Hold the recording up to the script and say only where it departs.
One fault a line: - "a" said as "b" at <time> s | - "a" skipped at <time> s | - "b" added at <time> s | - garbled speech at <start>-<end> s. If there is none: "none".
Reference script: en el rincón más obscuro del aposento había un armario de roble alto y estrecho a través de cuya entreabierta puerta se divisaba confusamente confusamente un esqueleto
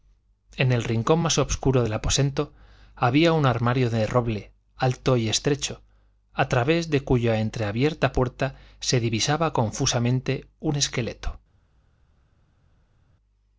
- "confusamente" skipped at 10.4 s